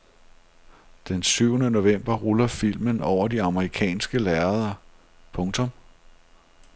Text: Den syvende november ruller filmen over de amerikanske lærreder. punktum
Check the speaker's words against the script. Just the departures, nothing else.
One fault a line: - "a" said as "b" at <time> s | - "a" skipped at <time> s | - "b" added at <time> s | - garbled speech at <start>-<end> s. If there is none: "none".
none